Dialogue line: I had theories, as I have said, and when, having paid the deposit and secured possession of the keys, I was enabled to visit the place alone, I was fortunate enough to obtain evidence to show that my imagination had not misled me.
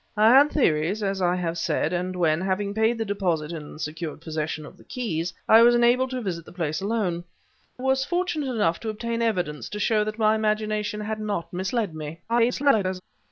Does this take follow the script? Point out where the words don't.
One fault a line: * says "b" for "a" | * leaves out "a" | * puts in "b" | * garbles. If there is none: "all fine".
* leaves out "I"
* garbles